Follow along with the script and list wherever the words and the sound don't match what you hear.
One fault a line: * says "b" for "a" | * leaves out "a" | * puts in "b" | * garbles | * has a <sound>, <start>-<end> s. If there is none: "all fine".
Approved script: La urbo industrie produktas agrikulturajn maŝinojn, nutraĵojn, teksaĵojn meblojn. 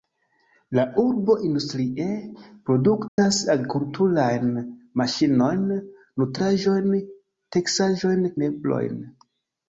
* has a dropout, 3.1-3.2 s